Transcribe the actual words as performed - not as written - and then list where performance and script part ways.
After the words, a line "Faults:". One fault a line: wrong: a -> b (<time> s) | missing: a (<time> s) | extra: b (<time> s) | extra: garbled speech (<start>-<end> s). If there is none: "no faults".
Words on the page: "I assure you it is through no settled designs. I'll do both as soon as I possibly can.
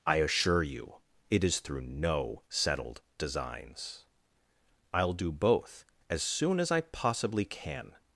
"I assure you it is through no settled designs. I'll do both as soon as I possibly can.
Faults:
no faults